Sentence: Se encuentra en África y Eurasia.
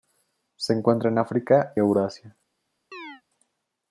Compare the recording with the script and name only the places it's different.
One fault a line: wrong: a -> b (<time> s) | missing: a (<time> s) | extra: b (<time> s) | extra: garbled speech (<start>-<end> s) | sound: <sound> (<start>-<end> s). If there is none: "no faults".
missing: y (1.7 s)
sound: chirp (2.9-3.2 s)